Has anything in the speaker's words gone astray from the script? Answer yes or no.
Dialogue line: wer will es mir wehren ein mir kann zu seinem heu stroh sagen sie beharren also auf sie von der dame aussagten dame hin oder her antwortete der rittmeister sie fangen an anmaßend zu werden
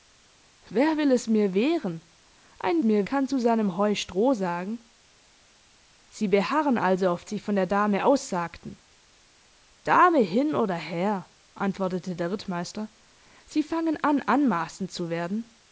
no